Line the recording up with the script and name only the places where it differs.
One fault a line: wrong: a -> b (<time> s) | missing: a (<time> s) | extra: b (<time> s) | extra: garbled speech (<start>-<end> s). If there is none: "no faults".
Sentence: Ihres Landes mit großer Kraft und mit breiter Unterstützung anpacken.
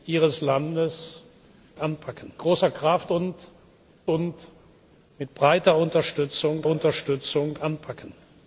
wrong: mit -> anpacken (1.7 s)
extra: und (4.1 s)
extra: Unterstützung (6.7 s)